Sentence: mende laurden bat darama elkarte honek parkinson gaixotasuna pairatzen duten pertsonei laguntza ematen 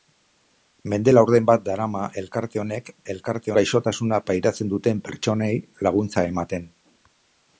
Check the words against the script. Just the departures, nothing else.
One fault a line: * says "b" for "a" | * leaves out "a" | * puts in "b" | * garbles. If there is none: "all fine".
* says "elkarte" for "parkinson"